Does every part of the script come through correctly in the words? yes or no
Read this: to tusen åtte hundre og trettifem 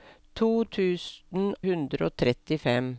no